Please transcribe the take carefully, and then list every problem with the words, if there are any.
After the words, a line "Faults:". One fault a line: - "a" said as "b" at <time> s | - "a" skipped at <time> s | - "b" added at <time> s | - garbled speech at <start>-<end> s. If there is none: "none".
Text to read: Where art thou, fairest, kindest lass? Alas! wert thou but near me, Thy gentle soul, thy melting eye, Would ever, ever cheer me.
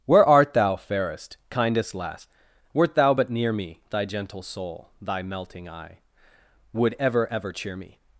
Where art thou, fairest, kindest lass! Wert thou but near me, Thy gentle soul, thy melting eye, Would ever, ever cheer me.
Faults:
- "Alas" skipped at 2.3 s